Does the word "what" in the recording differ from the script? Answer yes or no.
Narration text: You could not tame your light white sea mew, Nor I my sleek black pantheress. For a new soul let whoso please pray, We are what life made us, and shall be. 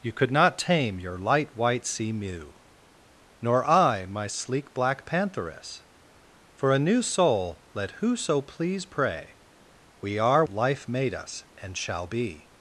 yes